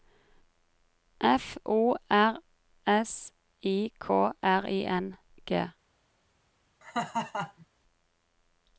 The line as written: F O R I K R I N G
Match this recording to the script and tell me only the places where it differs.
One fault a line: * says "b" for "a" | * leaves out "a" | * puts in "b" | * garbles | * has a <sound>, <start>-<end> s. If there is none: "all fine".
* puts in "S"
* has a laugh, 6.8-7.7 s